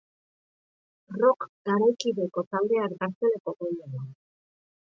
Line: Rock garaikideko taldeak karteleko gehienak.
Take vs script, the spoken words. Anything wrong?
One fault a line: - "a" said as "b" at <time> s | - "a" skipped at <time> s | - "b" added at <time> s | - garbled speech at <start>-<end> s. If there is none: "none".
none